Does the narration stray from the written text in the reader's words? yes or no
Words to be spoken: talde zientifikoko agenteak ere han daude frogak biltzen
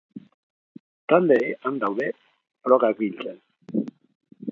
yes